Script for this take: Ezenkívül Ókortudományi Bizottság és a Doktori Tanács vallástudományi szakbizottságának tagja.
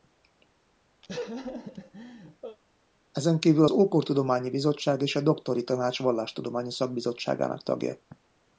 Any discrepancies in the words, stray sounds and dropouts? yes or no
yes